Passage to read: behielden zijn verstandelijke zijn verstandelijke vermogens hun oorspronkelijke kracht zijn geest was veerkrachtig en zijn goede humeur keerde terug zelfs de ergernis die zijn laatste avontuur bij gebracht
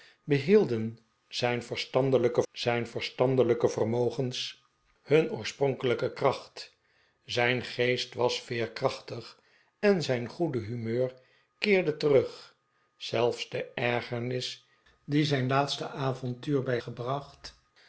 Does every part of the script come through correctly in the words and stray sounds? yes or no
yes